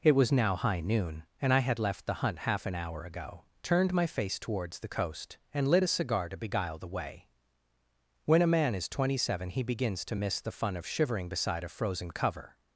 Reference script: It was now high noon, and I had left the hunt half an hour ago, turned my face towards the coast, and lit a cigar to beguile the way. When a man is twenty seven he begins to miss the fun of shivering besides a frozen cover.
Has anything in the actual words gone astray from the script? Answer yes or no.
yes